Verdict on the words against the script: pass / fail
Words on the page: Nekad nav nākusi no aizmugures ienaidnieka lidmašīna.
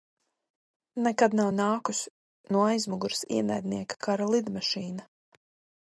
fail